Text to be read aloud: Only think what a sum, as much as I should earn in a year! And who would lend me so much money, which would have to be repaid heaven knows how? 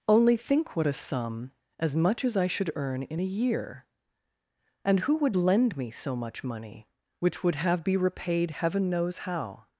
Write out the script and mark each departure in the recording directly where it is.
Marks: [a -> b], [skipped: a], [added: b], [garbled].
Only think what a sum, as much as I should earn in a year! And who would lend me so much money, which would have [skipped: to] be repaid heaven knows how?